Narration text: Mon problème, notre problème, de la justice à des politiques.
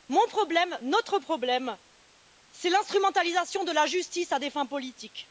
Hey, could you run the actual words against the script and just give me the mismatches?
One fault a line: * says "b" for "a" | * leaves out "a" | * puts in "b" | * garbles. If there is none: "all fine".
* puts in "c'est l'instrumentalisation"
* puts in "fins"